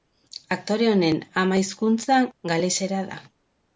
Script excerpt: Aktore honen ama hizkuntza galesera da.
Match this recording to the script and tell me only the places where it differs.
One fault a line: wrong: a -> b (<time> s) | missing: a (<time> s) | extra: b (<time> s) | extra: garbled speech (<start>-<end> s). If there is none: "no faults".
no faults